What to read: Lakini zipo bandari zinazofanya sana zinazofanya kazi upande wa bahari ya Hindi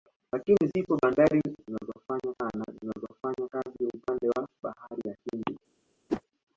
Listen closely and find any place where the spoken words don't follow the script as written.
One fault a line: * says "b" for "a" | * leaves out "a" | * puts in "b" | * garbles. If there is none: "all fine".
all fine